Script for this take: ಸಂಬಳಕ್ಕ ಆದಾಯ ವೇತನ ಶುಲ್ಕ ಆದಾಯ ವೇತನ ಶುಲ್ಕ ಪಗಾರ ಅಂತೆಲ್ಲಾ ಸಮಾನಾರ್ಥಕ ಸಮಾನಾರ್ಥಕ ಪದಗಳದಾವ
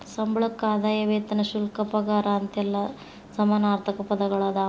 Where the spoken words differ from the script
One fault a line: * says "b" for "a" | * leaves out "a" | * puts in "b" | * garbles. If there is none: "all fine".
* leaves out "ಆದಾಯ ವೇತನ ಶುಲ್ಕ"
* leaves out "ಸಮಾನಾರ್ಥಕ"